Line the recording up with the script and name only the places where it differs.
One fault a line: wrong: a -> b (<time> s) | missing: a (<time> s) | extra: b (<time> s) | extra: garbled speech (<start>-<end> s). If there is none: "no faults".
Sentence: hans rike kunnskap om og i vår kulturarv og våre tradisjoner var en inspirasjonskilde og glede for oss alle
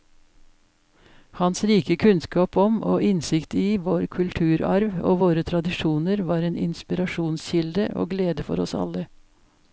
extra: innsikt (3.1 s)